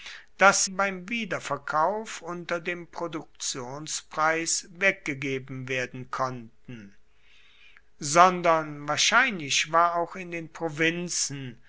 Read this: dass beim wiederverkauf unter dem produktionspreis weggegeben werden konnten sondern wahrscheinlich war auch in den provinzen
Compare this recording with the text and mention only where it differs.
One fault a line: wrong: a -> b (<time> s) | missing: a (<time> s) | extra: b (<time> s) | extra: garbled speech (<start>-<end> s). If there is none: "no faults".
no faults